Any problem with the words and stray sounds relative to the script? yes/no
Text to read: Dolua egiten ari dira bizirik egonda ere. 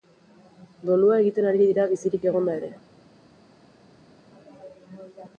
no